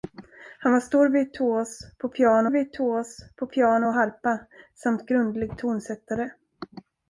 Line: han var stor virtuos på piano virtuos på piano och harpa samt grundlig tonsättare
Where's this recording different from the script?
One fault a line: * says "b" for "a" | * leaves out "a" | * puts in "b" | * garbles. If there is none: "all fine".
all fine